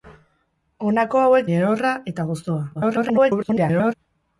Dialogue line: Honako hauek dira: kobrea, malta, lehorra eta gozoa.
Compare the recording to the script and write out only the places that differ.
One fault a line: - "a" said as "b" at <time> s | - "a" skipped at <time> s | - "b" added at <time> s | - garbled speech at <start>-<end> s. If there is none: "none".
- "dira kobrea malta" skipped at 1.4 s
- garbled speech at 2.7-3.9 s